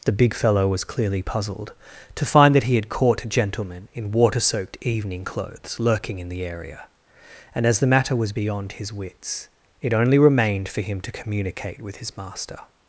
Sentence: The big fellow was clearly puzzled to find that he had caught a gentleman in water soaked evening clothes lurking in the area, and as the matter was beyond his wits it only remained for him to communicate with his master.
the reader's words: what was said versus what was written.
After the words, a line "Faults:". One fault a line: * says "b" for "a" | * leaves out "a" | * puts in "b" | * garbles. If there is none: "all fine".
The big fellow was clearly puzzled to find that he had caught a gentleman in water soaked evening clothes lurking in the area, and as the matter was beyond his wits it only remained for him to communicate with his master.
Faults:
all fine